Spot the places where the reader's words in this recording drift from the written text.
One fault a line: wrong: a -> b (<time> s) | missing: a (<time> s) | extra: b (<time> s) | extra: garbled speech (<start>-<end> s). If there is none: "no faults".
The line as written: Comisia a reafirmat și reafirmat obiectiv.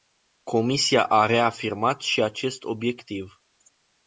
wrong: reafirmat -> acest (2.2 s)